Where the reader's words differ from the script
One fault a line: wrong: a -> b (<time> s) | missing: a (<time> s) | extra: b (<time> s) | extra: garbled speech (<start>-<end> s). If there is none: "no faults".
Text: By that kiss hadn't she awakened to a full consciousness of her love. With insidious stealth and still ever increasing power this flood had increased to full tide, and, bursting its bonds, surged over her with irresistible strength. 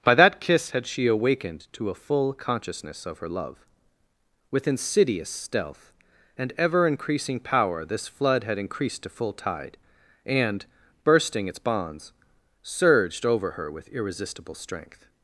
wrong: hadn't -> had (0.7 s)
missing: still (6.5 s)